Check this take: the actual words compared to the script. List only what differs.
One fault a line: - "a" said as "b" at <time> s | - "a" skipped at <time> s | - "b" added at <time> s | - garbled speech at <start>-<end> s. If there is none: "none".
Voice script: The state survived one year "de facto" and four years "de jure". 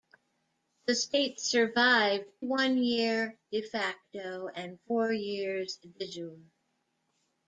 none